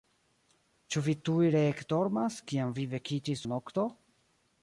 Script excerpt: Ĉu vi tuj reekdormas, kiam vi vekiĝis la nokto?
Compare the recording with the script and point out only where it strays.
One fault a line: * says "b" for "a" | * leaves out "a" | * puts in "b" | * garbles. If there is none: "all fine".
all fine